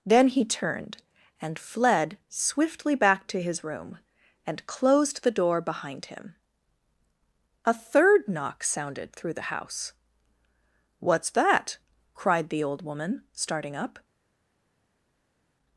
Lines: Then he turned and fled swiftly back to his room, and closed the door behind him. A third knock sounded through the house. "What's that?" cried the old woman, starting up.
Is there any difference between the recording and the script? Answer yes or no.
no